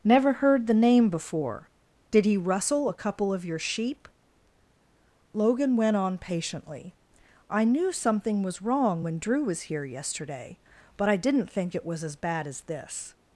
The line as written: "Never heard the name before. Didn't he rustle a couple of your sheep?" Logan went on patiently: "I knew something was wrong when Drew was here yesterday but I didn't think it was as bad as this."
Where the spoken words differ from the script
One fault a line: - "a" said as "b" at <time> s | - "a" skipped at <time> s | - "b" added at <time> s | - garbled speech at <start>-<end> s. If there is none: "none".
- "Didn't" said as "Did" at 2.1 s